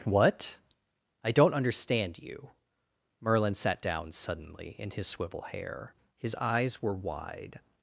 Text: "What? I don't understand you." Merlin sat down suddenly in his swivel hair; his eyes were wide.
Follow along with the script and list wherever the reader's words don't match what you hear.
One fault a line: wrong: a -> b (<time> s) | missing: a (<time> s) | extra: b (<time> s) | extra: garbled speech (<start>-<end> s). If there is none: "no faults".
no faults